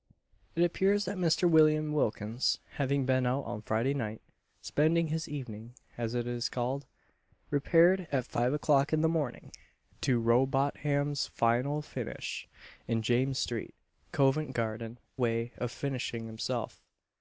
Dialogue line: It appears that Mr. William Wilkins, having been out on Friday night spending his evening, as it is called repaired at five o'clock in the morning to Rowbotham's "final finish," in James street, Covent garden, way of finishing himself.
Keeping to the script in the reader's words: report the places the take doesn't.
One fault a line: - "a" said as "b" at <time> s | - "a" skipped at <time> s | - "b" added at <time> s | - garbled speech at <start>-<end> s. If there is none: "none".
none